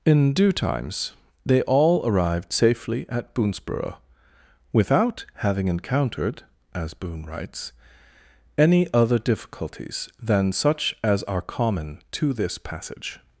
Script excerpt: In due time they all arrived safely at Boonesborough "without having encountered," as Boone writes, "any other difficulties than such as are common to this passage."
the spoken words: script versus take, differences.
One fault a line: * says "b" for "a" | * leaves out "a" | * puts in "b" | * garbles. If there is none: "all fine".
* says "times" for "time"